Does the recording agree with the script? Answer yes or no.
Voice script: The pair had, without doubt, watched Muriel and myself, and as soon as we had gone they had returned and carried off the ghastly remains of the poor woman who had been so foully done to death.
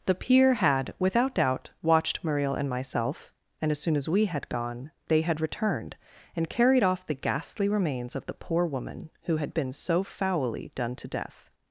no